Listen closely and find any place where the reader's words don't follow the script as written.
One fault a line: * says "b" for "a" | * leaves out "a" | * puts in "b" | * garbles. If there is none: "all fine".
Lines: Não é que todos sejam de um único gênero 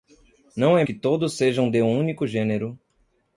all fine